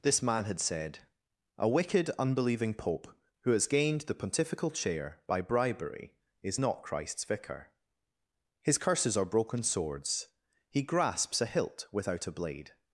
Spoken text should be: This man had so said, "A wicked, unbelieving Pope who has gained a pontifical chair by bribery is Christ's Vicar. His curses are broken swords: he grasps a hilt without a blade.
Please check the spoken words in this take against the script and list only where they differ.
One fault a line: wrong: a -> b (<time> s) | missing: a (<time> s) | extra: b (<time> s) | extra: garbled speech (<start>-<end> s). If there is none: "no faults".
missing: so (0.6 s)
wrong: a -> the (4.0 s)
extra: not (6.6 s)